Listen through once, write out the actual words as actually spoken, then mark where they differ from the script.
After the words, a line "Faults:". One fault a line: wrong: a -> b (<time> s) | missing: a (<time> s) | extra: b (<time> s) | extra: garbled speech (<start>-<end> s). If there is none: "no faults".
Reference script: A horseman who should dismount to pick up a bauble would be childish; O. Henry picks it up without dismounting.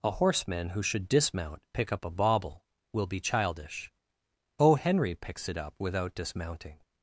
A horseman who should dismount pick up a bauble will be childish; O. Henry picks it up without dismounting.
Faults:
missing: to (1.6 s)
wrong: would -> will (2.9 s)